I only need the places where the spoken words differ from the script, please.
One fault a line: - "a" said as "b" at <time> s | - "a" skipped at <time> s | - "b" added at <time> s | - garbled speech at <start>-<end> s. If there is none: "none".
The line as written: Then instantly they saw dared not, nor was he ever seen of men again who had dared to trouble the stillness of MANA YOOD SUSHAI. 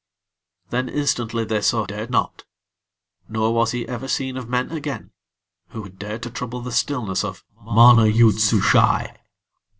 none